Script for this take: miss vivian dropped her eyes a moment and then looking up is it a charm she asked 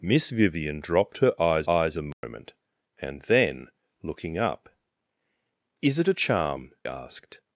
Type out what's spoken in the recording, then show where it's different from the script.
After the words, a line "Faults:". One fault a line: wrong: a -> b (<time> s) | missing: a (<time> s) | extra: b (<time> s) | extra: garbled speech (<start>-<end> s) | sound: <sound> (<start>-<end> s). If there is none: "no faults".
miss vivian dropped her eyes eyes a moment and then looking up is it a charm asked
Faults:
extra: eyes (1.7 s)
sound: dropout (2.1-2.2 s)
missing: she (6.7 s)